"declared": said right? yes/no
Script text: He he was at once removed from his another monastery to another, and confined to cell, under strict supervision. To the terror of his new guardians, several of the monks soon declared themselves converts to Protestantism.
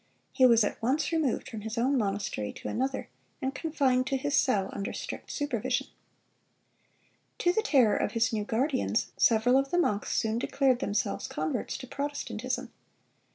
yes